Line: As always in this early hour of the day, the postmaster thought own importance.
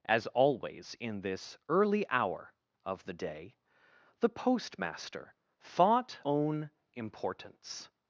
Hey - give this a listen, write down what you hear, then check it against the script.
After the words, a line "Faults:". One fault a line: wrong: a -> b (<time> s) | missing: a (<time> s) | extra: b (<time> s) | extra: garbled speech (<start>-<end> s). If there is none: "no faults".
As always in this early hour of the day, the postmaster thought own importance.
Faults:
no faults